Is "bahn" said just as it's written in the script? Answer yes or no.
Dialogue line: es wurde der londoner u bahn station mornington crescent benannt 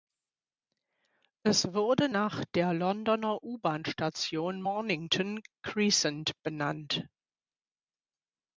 yes